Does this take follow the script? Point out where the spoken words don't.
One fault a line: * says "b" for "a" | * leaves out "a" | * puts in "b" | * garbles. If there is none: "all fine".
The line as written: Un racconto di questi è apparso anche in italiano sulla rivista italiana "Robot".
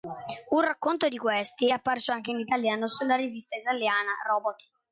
all fine